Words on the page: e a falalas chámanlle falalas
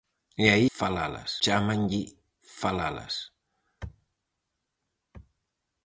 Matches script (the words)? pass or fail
pass